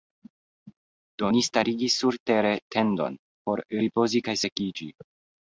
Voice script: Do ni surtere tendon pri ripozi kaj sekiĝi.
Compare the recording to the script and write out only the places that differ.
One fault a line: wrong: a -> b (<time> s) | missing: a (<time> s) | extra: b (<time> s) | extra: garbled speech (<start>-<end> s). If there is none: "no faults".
extra: starigis (1.5 s)
wrong: pri -> por (3.5 s)